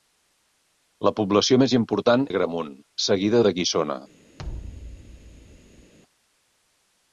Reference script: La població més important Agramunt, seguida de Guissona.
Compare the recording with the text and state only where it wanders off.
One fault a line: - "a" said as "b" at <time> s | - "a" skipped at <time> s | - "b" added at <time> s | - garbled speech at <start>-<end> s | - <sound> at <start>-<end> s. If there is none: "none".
- thud at 4.4-5.9 s